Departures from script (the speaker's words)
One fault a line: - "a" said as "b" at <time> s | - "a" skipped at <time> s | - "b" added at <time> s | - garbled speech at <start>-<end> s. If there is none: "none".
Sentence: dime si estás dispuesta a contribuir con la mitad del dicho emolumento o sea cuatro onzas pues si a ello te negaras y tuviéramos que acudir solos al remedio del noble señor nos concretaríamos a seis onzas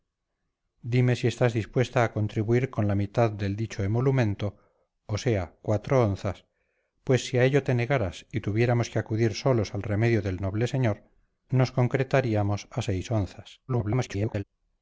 - garbled speech at 13.7-14.4 s